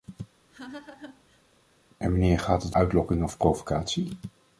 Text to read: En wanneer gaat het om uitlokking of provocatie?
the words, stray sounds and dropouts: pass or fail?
fail